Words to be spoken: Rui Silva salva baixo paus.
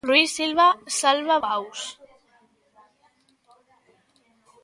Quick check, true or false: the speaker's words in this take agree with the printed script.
false